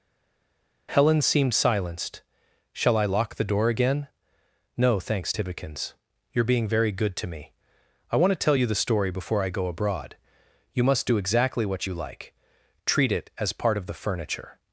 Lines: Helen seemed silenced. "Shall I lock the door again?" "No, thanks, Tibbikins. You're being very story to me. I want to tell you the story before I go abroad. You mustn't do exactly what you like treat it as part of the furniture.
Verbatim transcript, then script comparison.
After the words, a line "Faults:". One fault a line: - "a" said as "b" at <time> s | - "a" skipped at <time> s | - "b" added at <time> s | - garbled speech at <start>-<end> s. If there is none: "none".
Helen seemed silenced. "Shall I lock the door again?" "No, thanks, Tibbikins. You're being very good to me. I want to tell you the story before I go abroad. You must do exactly what you like treat it as part of the furniture.
Faults:
- "story" said as "good" at 6.9 s
- "mustn't" said as "must" at 10.8 s